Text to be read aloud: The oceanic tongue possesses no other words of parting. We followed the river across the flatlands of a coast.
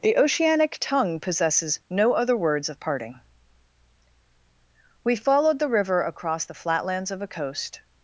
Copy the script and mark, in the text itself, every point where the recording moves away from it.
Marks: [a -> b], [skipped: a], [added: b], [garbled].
The oceanic tongue possesses no other words of parting. We followed the river across the flatlands of a coast.